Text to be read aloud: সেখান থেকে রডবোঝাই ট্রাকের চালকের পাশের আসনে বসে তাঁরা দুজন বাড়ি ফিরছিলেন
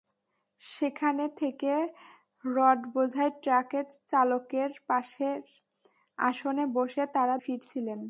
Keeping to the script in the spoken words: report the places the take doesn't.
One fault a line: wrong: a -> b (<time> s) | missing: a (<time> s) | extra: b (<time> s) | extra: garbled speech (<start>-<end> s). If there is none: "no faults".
missing: দুজন বাড়ি (7.3 s)